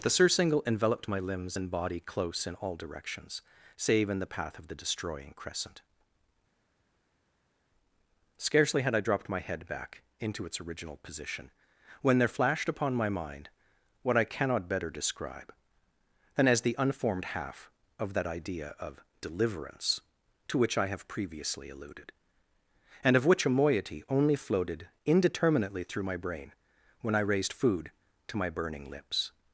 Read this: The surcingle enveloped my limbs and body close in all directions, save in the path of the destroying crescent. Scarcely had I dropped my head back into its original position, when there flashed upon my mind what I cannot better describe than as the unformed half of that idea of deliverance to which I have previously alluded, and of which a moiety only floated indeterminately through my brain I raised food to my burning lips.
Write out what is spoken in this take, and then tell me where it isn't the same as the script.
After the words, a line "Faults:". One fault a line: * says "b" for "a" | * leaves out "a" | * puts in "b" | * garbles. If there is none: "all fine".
The surcingle enveloped my limbs and body close in all directions, save in the path of the destroying crescent. Scarcely had I dropped my head back into its original position, when there flashed upon my mind what I cannot better describe than as the unformed half of that idea of deliverance to which I have previously alluded, and of which a moiety only floated indeterminately through my brain when I raised food to my burning lips.
Faults:
* puts in "when"